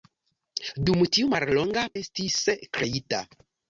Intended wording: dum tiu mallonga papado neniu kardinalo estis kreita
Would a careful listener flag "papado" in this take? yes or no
yes